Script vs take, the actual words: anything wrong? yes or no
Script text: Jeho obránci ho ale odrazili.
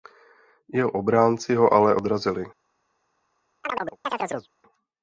no